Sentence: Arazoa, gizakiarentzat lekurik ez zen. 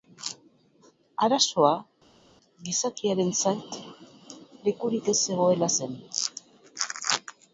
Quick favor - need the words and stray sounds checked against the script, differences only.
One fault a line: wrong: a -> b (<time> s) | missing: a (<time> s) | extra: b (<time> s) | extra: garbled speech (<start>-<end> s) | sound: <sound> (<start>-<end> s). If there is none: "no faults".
extra: zegoela (5.2 s)